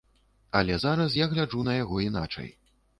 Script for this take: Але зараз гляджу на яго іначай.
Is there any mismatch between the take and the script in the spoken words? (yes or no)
yes